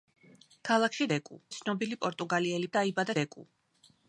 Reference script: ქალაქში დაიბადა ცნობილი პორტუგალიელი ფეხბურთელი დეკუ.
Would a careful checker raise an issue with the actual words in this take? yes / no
yes